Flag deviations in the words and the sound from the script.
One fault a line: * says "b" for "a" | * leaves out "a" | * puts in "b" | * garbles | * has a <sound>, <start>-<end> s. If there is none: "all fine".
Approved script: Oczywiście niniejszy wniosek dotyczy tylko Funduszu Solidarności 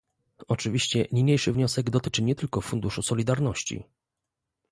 * puts in "nie"